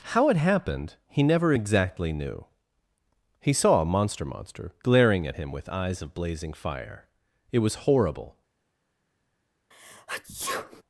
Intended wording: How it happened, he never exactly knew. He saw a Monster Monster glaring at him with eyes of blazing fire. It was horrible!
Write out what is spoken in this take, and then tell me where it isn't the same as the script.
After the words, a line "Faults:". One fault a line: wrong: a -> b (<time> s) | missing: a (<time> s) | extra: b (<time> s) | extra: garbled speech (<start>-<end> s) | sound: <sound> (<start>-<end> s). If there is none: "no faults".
How it happened, he never exactly knew. He saw a Monster Monster glaring at him with eyes of blazing fire. It was horrible!
Faults:
sound: sneeze (9.7-10.8 s)